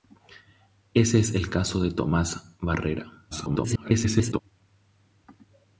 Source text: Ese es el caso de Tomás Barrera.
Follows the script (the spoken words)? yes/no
no